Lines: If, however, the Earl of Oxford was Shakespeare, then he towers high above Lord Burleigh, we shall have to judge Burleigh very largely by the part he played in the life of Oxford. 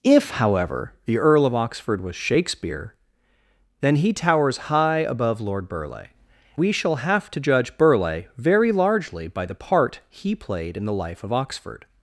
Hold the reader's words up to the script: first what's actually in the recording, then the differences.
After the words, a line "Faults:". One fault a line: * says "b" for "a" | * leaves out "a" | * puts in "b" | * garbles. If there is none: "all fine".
If, however, the Earl of Oxford was Shakespeare, then he towers high above Lord Burleigh, we shall have to judge Burleigh very largely by the part he played in the life of Oxford.
Faults:
all fine